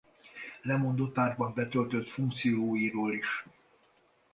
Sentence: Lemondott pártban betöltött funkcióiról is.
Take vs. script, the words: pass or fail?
pass